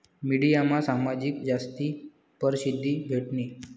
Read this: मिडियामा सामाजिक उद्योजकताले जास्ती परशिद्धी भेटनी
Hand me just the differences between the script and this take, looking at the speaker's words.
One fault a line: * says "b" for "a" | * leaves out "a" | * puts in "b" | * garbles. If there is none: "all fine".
* leaves out "उद्योजकताले"